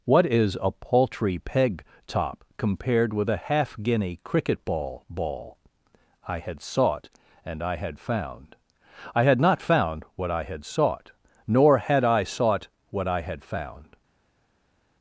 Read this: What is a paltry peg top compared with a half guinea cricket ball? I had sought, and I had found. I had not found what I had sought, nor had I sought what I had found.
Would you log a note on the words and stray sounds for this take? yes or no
yes